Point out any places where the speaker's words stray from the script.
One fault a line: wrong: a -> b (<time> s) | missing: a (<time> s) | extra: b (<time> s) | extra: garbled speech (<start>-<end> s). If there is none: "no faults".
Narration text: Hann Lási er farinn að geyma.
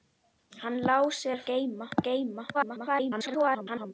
wrong: farinn -> geyma (1.5 s)
extra: garbled speech (2.5-3.9 s)